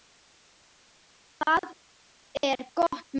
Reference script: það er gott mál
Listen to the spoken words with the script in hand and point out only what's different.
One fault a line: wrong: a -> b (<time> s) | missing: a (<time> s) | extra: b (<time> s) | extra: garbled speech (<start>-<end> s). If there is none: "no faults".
no faults